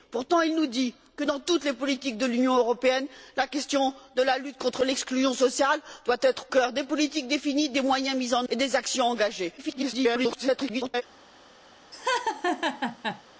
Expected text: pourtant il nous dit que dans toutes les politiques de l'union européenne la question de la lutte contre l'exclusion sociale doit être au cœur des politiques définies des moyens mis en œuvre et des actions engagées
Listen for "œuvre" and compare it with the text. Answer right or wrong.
wrong